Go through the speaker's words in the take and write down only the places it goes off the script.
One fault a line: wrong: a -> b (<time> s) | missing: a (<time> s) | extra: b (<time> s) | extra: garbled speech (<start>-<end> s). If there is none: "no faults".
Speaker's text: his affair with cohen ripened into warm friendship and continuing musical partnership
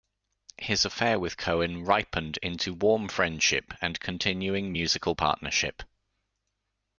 no faults